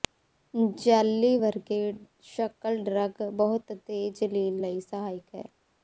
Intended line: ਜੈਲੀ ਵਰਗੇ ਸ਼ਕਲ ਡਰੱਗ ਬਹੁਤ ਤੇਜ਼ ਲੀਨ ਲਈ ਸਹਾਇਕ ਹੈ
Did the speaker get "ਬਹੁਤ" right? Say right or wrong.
right